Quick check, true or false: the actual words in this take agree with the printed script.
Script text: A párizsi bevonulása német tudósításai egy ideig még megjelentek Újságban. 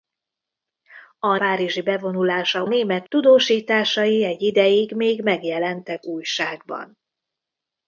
true